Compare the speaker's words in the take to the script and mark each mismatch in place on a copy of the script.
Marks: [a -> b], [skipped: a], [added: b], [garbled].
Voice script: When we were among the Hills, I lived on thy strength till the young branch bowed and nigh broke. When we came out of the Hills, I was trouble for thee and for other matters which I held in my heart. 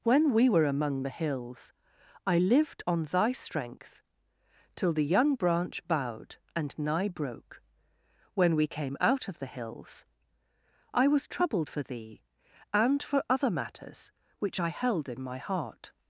When we were among the Hills, I lived on thy strength till the young branch bowed and nigh broke. When we came out of the Hills, I was [trouble -> troubled] for thee and for other matters which I held in my heart.